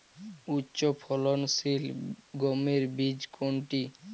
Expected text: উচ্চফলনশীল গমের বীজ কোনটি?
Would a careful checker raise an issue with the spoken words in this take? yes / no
no